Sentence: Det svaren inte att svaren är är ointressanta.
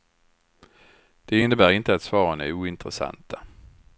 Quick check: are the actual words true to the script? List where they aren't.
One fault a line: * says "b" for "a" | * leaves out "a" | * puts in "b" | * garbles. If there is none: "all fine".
* says "innebär" for "svaren"
* leaves out "är"